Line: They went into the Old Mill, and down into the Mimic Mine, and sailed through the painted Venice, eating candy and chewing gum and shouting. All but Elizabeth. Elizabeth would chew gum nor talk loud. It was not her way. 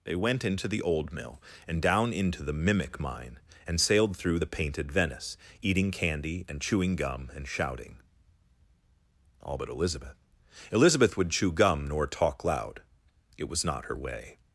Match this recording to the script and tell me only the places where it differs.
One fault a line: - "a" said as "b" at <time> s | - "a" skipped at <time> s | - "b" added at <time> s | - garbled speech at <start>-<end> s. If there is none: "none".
none